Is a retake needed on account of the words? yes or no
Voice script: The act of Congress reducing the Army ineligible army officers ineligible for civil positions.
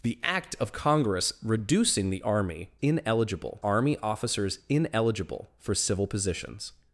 no